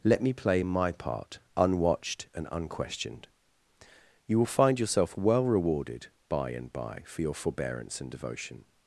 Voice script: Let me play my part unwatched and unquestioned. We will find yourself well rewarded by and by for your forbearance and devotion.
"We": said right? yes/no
no